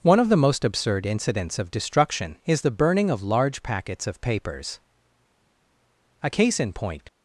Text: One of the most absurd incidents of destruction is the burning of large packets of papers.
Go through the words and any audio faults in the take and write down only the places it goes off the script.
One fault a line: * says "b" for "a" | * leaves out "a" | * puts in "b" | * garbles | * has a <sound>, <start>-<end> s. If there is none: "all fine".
* puts in "A case in point"